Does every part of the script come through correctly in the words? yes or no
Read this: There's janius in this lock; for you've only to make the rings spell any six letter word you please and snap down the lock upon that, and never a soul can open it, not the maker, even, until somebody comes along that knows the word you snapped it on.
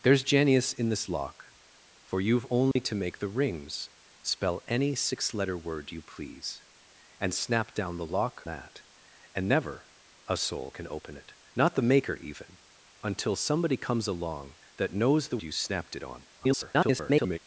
no